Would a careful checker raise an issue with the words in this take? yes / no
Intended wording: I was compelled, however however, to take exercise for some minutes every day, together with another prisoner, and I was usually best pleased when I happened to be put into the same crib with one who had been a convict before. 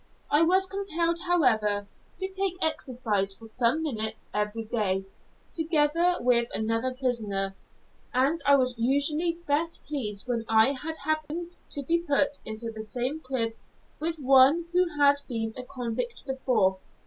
yes